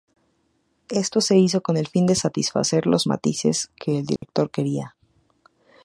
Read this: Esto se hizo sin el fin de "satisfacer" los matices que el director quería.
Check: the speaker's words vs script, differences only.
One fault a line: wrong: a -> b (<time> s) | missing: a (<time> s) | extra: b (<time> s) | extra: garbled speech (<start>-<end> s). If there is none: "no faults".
wrong: sin -> con (1.6 s)